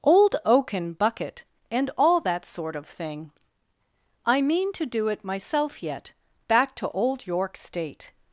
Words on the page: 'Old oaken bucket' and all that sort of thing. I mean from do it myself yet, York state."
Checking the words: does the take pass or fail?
fail